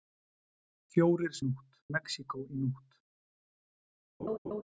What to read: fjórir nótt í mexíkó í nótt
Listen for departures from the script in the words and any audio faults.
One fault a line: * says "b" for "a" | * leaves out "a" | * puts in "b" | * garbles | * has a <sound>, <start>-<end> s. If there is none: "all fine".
* has a laugh, 4.2-4.6 s